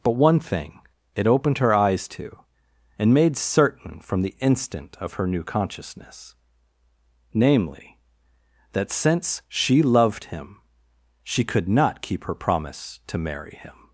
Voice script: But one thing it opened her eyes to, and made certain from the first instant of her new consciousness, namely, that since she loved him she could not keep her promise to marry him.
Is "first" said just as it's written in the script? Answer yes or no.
no